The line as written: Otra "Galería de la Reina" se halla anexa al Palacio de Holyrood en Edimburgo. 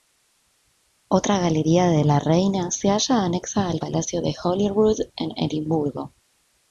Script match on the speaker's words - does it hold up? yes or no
yes